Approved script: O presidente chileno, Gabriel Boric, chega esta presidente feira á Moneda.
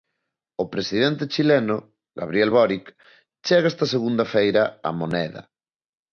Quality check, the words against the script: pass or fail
fail